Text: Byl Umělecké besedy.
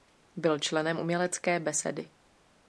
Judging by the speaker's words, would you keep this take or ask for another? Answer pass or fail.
fail